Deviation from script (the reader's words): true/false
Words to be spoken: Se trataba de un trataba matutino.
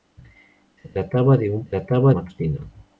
false